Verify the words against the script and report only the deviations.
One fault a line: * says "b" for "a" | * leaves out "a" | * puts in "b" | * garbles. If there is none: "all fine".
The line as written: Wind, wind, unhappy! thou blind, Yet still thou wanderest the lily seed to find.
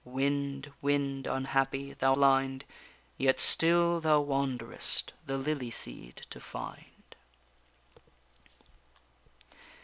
all fine